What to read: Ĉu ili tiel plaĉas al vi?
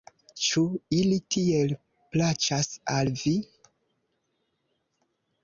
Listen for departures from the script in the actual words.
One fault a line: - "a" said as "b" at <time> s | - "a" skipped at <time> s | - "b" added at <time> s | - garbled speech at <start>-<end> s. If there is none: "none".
none